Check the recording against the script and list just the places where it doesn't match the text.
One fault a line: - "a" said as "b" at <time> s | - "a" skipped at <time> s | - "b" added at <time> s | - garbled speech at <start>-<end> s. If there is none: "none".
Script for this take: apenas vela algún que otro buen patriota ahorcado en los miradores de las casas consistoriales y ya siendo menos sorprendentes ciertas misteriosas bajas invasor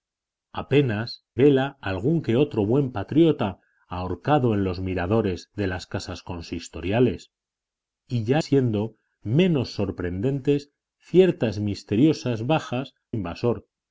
none